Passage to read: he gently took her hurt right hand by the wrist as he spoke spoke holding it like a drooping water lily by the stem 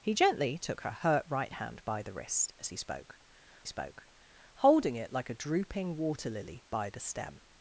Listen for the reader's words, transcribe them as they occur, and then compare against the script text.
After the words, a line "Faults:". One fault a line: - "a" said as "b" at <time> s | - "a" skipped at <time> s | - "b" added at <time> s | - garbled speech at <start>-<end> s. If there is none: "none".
he gently took her hurt right hand by the wrist as he spoke spoke holding it like a drooping water lily by the stem
Faults:
none